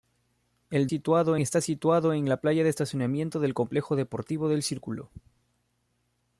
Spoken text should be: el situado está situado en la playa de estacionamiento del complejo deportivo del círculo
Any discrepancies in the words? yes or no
no